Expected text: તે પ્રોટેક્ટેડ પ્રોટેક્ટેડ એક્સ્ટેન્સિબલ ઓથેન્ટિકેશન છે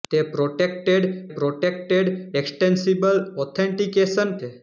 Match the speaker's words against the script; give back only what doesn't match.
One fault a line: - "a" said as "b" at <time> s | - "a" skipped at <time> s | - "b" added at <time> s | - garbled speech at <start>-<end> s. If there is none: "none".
none